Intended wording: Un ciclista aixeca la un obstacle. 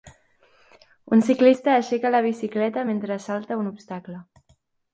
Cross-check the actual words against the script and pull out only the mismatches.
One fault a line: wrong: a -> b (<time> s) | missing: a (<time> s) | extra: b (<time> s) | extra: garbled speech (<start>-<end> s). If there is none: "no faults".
extra: bicicleta mentre salta (2.3 s)